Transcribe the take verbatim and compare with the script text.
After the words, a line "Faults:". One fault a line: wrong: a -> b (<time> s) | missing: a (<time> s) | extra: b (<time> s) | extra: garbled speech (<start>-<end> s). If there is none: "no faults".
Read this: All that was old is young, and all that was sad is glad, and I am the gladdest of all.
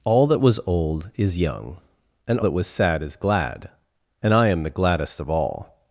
All that was old is young, and that was sad is glad, and I am the gladdest of all.
Faults:
missing: all (2.4 s)